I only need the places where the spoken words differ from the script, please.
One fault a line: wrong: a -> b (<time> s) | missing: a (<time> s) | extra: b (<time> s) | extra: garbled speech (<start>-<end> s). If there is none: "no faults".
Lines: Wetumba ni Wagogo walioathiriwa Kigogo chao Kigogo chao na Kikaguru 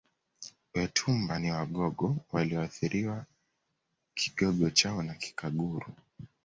missing: Kigogo chao (5.0 s)